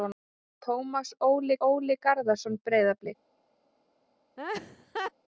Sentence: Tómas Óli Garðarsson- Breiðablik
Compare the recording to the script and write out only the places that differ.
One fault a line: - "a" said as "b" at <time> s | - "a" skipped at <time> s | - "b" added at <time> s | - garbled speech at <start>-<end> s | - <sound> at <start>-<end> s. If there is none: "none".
- "Óli" added at 1.7 s
- laugh at 4.4-5.1 s